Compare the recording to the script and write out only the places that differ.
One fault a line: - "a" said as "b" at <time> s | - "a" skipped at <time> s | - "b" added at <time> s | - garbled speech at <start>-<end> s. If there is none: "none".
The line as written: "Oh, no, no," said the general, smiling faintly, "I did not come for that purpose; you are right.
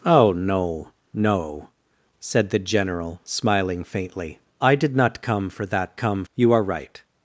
- "purpose" said as "come" at 6.0 s